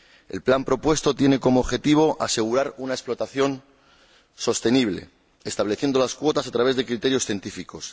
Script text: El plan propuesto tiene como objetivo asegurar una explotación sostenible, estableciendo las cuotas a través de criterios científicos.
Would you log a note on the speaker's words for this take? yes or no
no